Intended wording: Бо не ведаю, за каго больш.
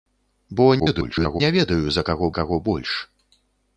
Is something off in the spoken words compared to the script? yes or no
yes